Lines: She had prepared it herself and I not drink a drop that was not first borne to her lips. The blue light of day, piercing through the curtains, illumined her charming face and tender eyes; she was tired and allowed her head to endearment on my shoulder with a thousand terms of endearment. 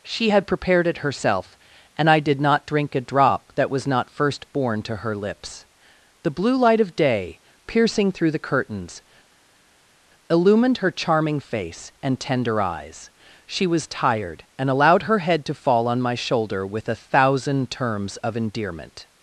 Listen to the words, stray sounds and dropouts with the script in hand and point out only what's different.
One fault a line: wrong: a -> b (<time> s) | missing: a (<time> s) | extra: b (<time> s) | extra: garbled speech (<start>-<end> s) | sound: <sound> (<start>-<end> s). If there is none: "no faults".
extra: did (2.2 s)
wrong: endearment -> fall (15.5 s)